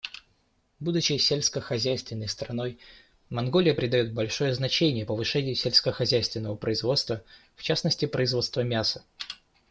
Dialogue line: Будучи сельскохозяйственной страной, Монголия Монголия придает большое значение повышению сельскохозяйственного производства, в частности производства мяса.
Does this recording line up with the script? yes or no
no